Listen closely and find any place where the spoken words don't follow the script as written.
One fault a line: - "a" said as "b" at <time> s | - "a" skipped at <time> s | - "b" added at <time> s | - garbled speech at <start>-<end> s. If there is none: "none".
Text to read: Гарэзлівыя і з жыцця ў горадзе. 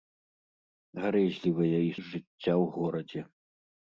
none